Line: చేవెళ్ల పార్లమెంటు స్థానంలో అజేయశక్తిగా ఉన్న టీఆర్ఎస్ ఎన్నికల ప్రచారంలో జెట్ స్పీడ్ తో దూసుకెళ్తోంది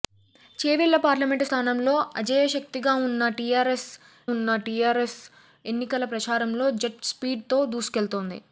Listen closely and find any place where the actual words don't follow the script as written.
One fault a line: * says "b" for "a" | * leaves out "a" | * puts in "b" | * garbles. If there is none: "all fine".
* puts in "ఉన్న టీఆర్ఎస్"